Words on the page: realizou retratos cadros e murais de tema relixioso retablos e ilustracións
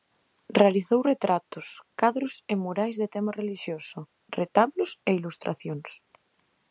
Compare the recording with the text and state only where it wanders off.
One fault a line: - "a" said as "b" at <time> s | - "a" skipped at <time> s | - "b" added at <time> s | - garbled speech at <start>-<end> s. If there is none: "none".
none